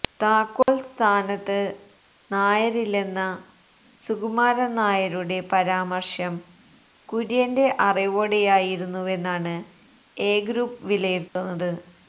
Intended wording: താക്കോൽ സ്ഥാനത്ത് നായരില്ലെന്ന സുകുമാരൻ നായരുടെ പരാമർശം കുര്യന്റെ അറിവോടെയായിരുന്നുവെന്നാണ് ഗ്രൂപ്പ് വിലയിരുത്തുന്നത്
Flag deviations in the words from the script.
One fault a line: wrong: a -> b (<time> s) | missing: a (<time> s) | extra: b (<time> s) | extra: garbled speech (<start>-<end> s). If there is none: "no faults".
extra: എ (10.2 s)